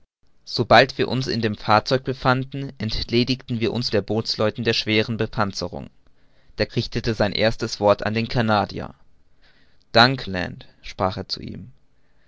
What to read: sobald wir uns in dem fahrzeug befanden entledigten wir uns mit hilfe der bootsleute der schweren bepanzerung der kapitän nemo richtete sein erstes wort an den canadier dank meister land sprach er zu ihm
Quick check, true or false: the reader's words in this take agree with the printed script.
false